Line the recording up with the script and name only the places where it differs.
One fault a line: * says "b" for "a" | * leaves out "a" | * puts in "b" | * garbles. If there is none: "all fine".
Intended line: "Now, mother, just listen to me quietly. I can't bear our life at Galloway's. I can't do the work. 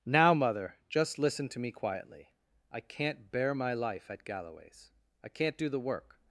* says "my" for "our"